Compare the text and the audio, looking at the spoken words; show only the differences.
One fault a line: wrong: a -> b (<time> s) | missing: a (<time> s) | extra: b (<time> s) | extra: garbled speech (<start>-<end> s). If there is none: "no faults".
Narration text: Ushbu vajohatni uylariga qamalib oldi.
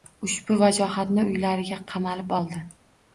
no faults